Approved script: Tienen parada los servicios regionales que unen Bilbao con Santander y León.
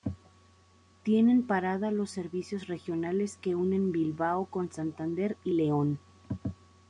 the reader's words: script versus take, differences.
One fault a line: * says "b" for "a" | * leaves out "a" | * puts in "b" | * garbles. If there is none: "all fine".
all fine